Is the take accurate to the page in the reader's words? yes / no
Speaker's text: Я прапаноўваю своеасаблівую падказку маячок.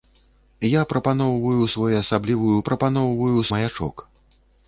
no